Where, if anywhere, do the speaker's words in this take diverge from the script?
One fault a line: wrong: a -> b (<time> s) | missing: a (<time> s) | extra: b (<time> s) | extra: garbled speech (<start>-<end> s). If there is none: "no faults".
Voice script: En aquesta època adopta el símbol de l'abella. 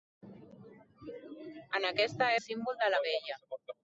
missing: època adopta (2.3 s)